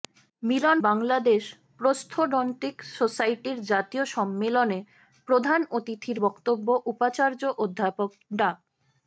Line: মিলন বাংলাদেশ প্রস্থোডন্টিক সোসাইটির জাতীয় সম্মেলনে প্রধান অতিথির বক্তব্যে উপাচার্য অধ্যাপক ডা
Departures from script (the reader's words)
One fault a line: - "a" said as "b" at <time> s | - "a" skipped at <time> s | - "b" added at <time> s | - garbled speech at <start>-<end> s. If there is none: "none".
none